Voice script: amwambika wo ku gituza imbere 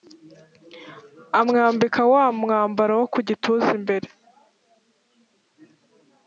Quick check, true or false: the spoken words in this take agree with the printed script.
false